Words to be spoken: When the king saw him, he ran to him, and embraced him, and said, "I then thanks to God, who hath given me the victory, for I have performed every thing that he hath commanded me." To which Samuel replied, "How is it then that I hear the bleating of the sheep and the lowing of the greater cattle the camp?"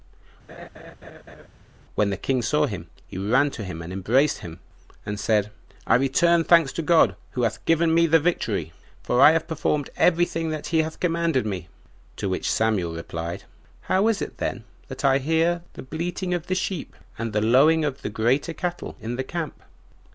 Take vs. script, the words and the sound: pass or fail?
fail